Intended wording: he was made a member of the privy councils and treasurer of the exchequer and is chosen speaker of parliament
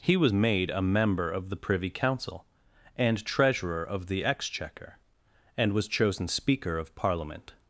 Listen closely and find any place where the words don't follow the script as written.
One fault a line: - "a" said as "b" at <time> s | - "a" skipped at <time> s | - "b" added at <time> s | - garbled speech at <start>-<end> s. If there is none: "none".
- "councils" said as "council" at 1.9 s
- "is" said as "was" at 5.7 s